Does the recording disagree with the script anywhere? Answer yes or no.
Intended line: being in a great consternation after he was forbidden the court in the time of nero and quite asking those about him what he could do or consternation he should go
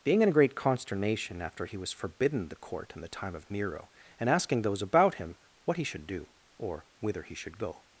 yes